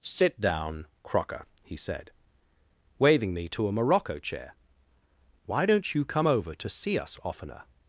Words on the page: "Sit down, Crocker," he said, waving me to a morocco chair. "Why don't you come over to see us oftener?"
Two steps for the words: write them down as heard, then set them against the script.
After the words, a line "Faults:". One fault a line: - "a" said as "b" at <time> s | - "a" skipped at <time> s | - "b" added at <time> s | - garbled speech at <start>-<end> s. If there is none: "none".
"Sit down, Crocker," he said, waving me to a morocco chair. "Why don't you come over to see us oftener?"
Faults:
none